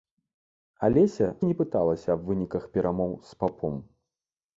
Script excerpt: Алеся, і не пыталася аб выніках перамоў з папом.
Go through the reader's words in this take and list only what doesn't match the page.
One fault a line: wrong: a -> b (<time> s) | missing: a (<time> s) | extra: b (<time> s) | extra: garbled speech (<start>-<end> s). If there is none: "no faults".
no faults